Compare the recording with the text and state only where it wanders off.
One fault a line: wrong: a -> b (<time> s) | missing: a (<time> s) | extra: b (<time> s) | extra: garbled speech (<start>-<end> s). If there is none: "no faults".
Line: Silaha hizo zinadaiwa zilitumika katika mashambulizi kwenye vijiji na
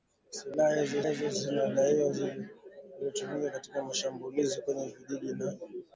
extra: hizo (1.1 s)